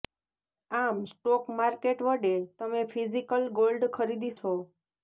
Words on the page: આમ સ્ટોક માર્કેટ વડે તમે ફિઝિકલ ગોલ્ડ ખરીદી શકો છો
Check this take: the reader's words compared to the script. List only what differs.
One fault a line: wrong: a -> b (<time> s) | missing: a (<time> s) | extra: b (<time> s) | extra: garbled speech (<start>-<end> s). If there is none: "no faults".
missing: શકો (4.3 s)